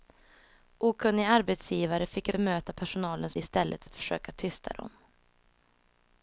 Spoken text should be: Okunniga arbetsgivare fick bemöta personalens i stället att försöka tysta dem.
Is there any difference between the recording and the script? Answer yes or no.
no